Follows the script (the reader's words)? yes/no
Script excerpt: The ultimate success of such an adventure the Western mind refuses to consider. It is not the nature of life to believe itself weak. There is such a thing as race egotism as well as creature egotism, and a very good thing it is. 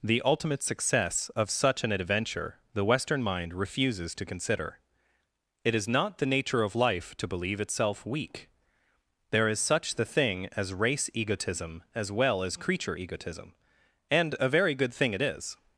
no